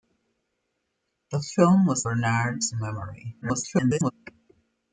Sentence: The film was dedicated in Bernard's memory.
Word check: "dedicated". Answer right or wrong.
wrong